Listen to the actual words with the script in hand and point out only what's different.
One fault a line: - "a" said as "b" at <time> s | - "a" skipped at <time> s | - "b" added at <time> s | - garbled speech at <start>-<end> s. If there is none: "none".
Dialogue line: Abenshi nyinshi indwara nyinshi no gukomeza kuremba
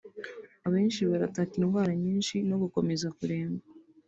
- "nyinshi" said as "barataka" at 1.1 s